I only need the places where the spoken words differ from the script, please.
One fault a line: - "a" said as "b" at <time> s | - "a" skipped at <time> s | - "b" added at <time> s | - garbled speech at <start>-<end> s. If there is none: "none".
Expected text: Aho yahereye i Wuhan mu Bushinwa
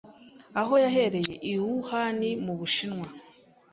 none